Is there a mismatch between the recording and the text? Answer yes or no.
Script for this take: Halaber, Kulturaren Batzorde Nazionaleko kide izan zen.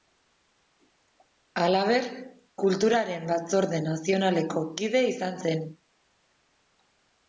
no